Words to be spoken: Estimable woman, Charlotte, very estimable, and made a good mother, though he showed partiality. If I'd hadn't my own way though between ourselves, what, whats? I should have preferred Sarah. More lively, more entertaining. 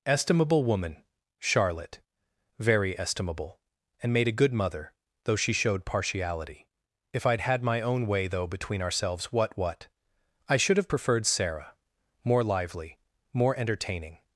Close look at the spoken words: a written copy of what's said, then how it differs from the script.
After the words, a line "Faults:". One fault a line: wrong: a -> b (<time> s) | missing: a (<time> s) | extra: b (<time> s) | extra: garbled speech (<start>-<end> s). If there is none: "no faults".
Estimable woman, Charlotte, very estimable, and made a good mother, though she showed partiality. If I'd had my own way though between ourselves, what, what? I should have preferred Sarah. More lively, more entertaining.
Faults:
wrong: he -> she (5.4 s)
wrong: hadn't -> had (7.4 s)
wrong: whats -> what (9.6 s)